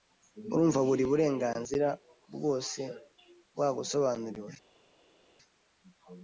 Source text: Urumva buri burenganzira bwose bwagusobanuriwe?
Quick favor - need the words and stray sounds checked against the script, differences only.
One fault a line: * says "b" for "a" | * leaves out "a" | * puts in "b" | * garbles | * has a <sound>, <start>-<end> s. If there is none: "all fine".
all fine